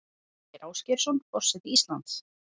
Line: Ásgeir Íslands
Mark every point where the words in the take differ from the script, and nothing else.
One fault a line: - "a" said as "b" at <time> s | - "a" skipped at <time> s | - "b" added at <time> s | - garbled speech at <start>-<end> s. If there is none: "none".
- "Ásgeirsson forseti" added at 0.7 s